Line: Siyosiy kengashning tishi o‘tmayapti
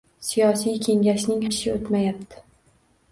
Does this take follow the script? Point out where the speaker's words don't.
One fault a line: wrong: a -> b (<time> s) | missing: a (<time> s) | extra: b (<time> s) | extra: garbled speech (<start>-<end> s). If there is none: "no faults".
no faults